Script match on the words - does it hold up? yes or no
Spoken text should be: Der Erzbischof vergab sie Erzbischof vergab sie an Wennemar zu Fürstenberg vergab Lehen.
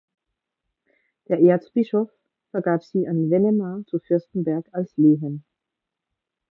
no